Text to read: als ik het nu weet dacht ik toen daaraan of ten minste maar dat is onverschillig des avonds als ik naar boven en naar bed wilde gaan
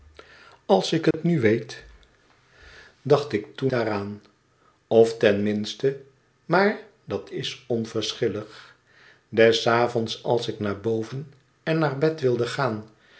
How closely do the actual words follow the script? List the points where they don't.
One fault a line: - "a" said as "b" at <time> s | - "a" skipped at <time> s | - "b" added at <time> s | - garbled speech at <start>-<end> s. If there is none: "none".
none